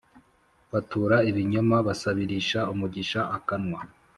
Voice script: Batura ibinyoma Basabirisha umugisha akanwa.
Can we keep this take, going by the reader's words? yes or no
yes